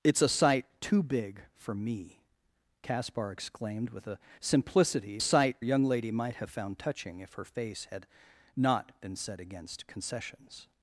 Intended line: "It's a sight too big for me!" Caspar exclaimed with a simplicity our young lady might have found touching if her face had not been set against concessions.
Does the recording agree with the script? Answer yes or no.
no